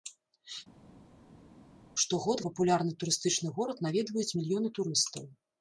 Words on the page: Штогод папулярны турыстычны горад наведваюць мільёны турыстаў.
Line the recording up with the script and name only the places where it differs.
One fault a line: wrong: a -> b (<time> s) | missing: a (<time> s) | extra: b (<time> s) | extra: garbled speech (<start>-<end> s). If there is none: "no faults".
no faults